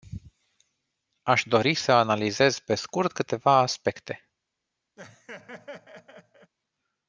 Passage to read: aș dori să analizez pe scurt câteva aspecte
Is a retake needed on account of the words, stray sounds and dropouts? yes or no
yes